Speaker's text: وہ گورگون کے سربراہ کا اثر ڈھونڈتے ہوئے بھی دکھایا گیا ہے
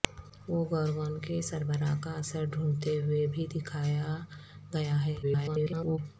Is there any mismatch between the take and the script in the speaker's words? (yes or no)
yes